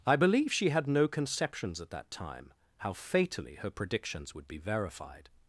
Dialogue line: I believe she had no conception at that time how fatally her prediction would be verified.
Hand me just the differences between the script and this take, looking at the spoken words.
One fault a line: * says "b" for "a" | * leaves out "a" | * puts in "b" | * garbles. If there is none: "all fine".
* says "conceptions" for "conception"
* says "predictions" for "prediction"